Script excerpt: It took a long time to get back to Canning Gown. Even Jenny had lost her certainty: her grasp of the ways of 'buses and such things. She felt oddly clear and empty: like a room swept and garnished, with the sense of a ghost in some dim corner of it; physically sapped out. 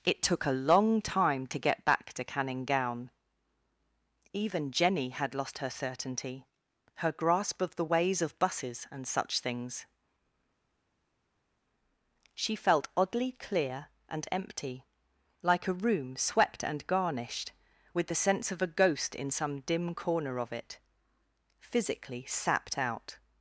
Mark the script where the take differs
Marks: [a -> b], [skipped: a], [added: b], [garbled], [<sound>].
It took a long time to get back to Canning Gown. Even Jenny had lost her certainty: her grasp of the ways of 'buses and such things. She felt oddly clear and empty: like a room swept and garnished, with the sense of a ghost in some dim corner of it; physically sapped out.